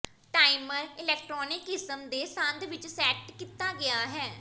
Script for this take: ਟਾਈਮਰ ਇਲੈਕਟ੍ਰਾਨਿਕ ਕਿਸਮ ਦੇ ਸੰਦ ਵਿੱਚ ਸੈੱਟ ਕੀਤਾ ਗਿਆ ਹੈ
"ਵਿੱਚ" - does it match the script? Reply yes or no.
yes